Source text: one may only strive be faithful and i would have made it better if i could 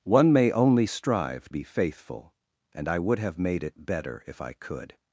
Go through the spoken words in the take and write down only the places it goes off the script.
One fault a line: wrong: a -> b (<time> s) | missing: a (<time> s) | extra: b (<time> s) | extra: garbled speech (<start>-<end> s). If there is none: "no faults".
no faults